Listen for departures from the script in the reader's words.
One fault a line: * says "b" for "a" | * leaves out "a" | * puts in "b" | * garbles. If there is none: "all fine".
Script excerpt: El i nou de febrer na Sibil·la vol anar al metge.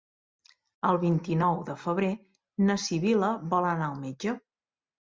* puts in "vint"